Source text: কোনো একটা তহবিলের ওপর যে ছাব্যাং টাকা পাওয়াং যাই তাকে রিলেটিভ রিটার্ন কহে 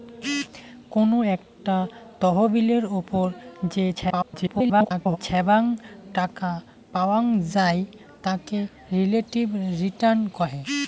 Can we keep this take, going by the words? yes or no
no